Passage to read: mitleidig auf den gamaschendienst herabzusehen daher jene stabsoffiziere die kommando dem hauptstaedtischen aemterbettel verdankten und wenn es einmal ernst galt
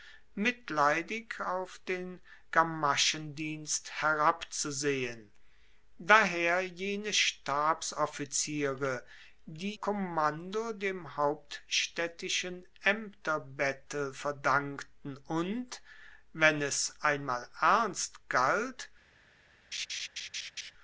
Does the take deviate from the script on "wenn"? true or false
false